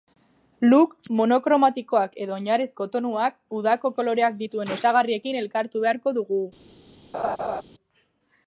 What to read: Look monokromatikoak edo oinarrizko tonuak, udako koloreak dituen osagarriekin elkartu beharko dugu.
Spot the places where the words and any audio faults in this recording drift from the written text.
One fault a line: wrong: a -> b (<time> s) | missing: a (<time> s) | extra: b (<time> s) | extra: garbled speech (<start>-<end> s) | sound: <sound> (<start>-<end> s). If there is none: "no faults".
sound: laugh (7.1-7.6 s)